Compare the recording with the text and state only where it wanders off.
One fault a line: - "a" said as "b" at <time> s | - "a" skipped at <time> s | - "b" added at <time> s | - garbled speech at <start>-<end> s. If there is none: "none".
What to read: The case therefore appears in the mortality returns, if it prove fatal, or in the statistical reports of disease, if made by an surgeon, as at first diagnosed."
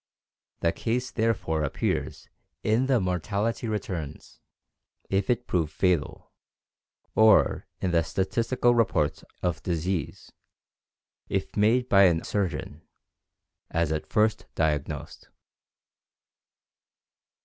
none